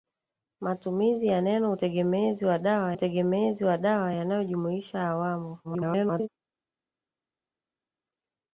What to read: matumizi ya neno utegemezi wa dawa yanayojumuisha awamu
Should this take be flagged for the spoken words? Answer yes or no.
yes